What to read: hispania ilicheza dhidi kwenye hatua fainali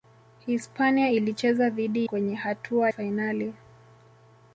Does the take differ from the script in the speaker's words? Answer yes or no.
no